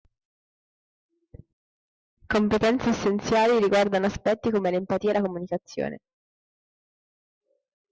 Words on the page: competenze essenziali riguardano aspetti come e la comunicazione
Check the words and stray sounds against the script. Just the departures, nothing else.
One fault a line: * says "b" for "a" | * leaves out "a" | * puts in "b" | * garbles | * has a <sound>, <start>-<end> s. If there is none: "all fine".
* puts in "l'empatia"